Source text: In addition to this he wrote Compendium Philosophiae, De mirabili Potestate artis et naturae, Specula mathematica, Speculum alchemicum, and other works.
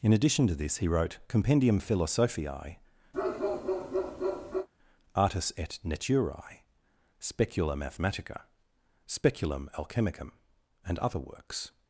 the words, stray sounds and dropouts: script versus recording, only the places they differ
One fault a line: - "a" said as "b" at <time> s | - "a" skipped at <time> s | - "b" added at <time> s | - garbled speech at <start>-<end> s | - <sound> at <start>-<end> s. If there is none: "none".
- "De mirabili Potestate" skipped at 2.8 s
- bark at 3.1-4.7 s